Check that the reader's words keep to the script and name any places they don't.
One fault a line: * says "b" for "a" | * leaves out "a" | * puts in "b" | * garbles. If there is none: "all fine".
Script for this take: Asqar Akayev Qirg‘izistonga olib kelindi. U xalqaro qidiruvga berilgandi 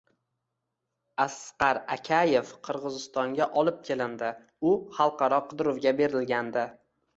all fine